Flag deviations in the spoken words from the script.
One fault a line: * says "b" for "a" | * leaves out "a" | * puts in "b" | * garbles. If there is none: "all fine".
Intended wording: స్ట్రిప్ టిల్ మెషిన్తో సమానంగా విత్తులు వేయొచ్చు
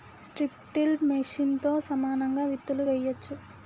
all fine